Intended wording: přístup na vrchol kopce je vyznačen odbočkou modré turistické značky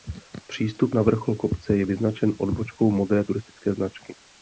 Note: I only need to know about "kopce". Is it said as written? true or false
true